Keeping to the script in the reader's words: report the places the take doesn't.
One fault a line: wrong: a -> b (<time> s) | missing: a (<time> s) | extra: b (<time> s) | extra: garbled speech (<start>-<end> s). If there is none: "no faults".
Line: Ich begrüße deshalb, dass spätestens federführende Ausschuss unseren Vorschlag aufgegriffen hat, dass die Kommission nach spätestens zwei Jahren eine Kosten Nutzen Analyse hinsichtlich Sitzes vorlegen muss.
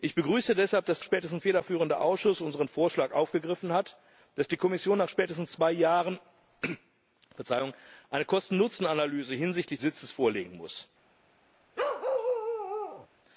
no faults